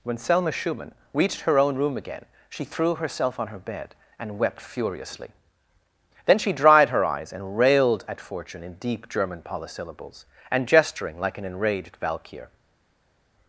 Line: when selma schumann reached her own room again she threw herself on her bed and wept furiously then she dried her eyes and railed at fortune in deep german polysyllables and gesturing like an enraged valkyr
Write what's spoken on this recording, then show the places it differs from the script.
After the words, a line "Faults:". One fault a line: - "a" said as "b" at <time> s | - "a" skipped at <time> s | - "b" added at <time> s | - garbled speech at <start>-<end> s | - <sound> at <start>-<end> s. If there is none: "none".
when selma schumann reached her own room again she threw herself on her bed and wept furiously then she dried her eyes and railed at fortune in deep german polysyllables and gesturing like an enraged valkyr
Faults:
none